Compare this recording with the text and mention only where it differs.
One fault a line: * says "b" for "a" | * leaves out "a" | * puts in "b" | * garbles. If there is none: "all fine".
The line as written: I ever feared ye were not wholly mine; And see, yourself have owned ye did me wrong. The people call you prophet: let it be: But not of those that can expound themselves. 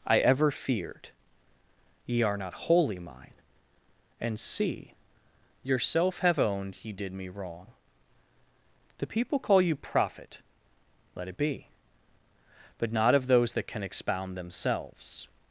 * says "are" for "were"